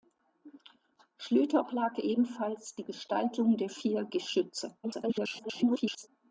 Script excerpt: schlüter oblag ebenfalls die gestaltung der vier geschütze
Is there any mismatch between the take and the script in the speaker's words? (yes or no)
yes